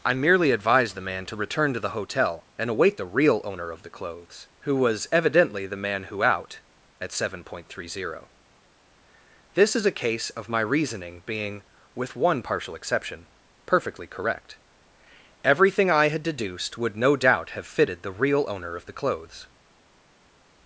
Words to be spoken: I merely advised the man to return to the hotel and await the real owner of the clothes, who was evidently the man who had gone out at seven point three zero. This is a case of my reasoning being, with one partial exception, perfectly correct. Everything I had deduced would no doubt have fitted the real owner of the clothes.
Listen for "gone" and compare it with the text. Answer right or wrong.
wrong